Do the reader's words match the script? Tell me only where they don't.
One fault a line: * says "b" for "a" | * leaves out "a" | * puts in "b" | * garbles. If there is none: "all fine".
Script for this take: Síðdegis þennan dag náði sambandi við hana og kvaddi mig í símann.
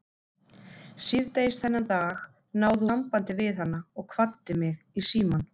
all fine